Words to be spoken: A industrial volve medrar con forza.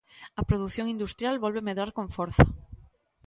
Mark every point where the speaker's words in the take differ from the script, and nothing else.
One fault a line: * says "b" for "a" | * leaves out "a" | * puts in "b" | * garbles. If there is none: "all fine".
* puts in "produción"